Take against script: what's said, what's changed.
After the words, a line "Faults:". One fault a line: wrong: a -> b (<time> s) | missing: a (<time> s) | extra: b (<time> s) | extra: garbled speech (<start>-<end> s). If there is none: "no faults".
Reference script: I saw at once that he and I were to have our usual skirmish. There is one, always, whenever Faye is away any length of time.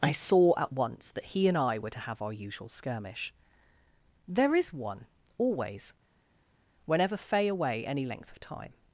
I saw at once that he and I were to have our usual skirmish. There is one, always, whenever Faye away any length of time.
Faults:
missing: is (7.5 s)